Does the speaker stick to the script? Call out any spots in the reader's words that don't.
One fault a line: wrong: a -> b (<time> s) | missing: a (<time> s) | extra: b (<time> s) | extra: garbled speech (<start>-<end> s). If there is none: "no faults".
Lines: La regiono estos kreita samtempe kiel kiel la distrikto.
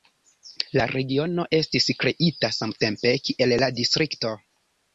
wrong: estos -> estis (1.6 s)
missing: kiel (3.6 s)